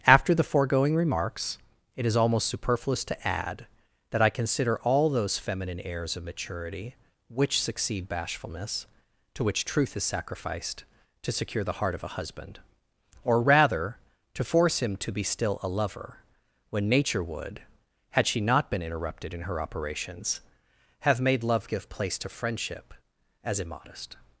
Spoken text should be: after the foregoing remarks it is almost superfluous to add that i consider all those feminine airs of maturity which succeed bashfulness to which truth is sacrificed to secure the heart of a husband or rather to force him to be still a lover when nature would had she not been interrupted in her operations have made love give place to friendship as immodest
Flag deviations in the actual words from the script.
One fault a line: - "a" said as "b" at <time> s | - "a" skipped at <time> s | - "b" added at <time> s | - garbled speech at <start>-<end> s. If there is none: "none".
none